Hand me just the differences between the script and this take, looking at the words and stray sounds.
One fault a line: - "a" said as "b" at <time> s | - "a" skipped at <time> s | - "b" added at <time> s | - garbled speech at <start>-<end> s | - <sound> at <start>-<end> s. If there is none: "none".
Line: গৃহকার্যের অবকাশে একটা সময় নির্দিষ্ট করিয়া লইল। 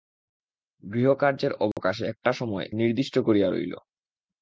- dropout at 1.7-1.8 s